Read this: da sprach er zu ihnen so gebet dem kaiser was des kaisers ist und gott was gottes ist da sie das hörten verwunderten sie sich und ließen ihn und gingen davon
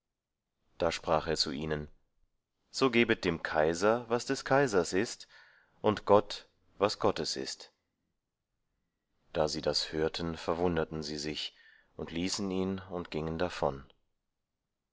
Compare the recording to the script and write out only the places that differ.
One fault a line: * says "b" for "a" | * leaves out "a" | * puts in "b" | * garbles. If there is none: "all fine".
all fine